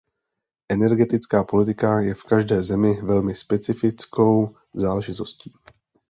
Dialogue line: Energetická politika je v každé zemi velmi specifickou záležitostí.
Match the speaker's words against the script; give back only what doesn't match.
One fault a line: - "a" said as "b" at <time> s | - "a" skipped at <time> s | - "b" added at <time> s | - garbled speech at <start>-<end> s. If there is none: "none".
none